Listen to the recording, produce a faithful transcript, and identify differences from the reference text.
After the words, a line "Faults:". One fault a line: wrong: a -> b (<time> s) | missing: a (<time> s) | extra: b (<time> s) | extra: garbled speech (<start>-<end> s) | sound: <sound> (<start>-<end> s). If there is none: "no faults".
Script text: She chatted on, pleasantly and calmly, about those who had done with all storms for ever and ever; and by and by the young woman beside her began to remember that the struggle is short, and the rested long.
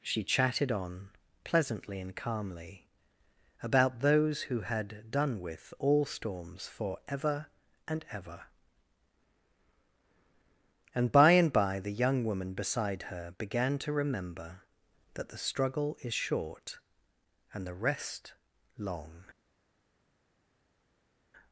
She chatted on, pleasantly and calmly, about those who had done with all storms for ever and ever; and by and by the young woman beside her began to remember that the struggle is short, and the rest long.
Faults:
wrong: rested -> rest (17.7 s)